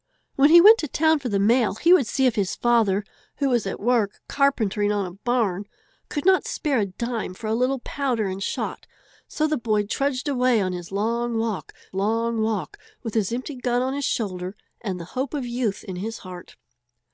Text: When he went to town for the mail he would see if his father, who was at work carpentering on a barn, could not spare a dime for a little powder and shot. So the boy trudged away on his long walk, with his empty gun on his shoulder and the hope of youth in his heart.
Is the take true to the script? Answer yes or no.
no